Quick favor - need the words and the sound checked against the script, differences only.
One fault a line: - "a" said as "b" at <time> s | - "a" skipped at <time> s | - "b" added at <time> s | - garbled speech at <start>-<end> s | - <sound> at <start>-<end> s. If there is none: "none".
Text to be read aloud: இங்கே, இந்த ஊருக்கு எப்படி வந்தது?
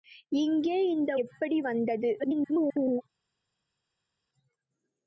- "ஊருக்கு" skipped at 1.2 s
- garbled speech at 2.2-3.0 s